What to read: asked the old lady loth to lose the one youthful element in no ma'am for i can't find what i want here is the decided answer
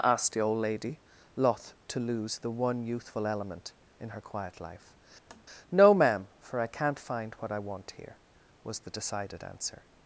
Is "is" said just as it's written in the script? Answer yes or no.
no